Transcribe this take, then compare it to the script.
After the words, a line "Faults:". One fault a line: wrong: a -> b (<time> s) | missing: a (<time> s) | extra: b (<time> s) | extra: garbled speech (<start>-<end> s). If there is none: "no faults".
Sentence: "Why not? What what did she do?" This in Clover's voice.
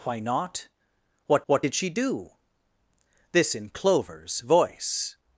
"Why not? What what did she do?" This in Clover's voice.
Faults:
no faults